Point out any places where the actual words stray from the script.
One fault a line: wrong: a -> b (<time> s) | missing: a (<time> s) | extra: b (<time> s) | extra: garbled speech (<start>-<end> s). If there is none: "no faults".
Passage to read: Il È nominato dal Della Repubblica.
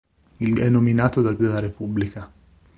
no faults